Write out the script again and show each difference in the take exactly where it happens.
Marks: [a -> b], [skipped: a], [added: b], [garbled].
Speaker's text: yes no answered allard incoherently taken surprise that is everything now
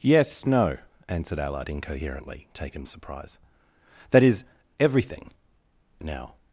yes no answered allard incoherently taken surprise that is everything now